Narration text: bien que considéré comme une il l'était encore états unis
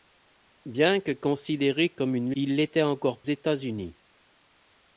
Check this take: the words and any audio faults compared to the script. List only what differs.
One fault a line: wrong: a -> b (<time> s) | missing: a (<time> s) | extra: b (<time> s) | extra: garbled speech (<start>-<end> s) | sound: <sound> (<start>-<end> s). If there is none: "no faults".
no faults